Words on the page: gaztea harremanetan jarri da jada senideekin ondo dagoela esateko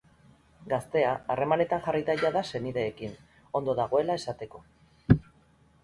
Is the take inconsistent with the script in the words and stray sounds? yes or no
no